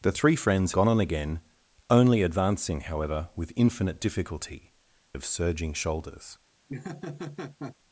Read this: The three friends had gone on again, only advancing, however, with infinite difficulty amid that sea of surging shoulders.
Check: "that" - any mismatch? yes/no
yes